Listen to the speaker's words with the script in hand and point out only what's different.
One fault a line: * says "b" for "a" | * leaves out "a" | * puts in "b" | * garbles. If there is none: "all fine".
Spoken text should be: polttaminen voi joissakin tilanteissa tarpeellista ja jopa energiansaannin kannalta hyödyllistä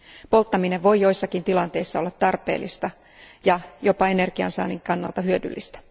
* puts in "olla"